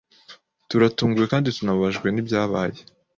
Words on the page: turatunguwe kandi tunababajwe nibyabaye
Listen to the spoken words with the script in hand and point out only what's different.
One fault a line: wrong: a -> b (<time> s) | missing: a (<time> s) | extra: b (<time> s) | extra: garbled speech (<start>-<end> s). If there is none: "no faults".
no faults